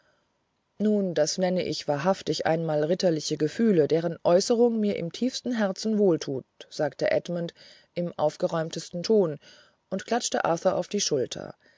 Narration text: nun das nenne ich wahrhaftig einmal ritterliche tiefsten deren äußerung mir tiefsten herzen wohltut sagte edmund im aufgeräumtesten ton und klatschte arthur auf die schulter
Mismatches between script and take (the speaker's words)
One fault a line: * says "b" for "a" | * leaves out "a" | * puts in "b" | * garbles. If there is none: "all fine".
* says "gefühle" for "tiefsten"
* puts in "im"